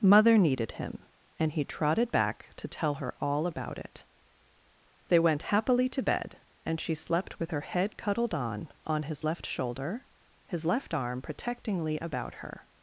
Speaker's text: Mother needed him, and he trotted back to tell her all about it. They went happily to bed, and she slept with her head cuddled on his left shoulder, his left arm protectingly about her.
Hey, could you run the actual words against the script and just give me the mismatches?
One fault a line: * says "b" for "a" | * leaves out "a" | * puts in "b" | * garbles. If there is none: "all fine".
* puts in "on"